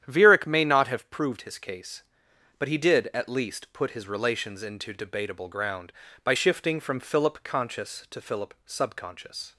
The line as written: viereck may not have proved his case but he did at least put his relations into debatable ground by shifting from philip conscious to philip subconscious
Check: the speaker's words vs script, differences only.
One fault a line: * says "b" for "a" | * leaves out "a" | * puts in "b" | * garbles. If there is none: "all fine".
all fine